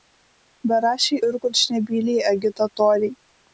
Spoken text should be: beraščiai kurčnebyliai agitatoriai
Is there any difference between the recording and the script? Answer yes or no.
yes